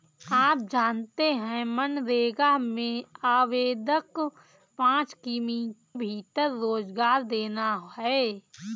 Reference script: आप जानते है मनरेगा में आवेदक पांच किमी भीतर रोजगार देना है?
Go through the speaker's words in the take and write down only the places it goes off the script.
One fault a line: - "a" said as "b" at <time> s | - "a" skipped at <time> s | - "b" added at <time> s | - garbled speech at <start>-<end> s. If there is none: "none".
none